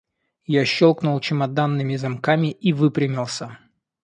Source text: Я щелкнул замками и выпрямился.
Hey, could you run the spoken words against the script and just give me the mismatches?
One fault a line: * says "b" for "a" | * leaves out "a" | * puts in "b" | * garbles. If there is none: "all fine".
* puts in "чемоданными"